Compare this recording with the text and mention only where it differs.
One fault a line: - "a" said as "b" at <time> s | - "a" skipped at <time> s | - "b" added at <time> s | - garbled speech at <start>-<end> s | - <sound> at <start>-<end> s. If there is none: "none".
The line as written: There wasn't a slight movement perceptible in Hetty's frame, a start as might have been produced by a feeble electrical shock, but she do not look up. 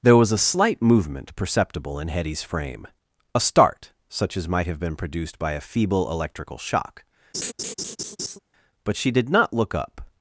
- "wasn't" said as "was" at 0.2 s
- "such" added at 4.1 s
- laugh at 7.3-8.4 s
- "do" said as "did" at 9.1 s